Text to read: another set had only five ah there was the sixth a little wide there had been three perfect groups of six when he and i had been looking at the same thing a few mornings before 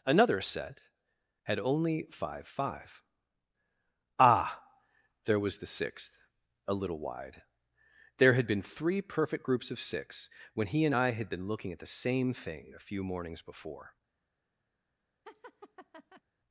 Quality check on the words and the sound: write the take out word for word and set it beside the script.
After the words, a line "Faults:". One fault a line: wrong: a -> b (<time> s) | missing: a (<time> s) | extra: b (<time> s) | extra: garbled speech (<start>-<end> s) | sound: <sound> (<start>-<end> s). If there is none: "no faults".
another set had only five five ah there was the sixth a little wide there had been three perfect groups of six when he and i had been looking at the same thing a few mornings before
Faults:
extra: five (2.5 s)
sound: laugh (15.3-16.2 s)